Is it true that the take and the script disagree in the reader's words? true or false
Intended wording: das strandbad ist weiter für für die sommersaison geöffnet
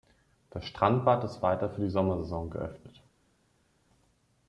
true